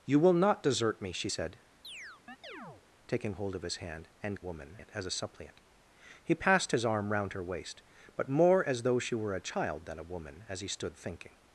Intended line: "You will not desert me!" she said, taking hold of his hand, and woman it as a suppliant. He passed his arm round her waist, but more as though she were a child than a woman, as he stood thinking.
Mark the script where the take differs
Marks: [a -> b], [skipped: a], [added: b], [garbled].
"You will not desert me!" she said, taking hold of his hand, and woman it as a suppliant. He passed his arm round her waist, but more as though she were a child than a woman, as he stood thinking.